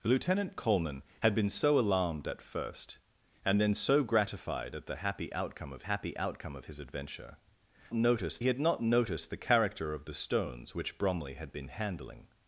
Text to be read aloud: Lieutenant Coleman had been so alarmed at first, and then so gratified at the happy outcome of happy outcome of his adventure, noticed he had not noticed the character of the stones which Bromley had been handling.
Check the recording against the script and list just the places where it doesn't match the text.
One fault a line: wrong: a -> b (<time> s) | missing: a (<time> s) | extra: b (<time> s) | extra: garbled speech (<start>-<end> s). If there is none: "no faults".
no faults